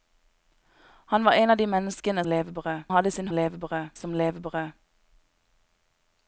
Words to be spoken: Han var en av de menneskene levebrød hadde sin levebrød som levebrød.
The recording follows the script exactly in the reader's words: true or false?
true